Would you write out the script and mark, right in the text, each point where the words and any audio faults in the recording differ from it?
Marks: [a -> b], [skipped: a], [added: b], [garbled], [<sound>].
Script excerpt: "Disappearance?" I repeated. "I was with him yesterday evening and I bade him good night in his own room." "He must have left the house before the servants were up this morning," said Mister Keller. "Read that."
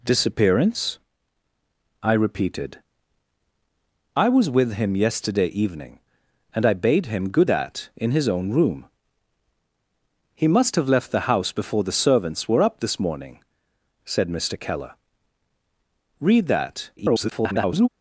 "Disappearance?" I repeated. "I was with him yesterday evening and I bade him good [night -> that] in his own room." "He must have left the house before the servants were up this morning," said Mister Keller. "Read that." [garbled]